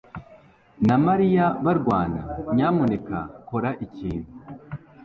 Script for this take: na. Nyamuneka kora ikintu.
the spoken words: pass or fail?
fail